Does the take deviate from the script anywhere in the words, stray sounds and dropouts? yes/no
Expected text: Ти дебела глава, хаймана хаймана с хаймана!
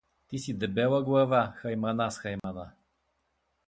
yes